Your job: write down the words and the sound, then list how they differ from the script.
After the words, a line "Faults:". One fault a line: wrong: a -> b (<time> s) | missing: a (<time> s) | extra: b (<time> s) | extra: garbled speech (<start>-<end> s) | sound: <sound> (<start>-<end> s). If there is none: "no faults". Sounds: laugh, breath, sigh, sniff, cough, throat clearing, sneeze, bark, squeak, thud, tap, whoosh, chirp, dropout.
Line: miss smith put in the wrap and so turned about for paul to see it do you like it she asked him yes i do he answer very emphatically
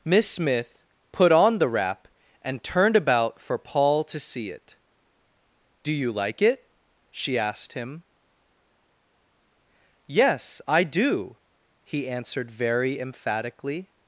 miss smith put on the wrap and turned about for paul to see it do you like it she asked him yes i do he answered very emphatically
Faults:
wrong: in -> on (1.3 s)
missing: so (2.6 s)
wrong: answer -> answered (12.1 s)